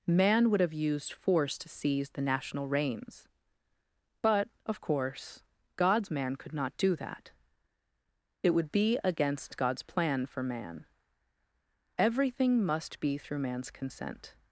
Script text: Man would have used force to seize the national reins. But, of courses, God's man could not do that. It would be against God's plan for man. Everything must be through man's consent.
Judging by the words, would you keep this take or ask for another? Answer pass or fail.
fail